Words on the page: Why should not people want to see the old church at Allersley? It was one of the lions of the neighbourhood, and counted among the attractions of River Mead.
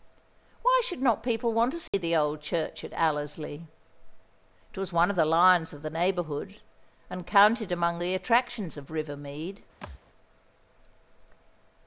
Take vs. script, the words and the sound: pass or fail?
fail